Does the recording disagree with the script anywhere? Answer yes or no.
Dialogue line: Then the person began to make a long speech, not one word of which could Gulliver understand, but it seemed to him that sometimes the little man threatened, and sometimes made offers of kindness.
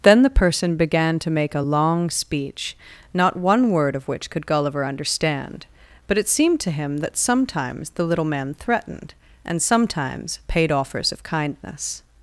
yes